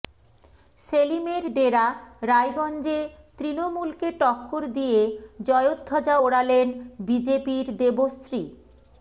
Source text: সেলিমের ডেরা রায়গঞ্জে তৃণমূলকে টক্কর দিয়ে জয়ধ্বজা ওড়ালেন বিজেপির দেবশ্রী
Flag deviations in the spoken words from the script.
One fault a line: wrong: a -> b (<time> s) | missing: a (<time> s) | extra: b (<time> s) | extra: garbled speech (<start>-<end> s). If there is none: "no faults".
no faults